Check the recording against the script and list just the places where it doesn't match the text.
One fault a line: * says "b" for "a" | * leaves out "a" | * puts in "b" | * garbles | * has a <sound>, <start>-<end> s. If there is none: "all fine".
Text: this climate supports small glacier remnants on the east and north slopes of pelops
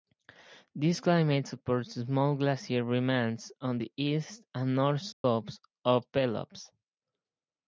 * has a dropout, 5.1-5.2 s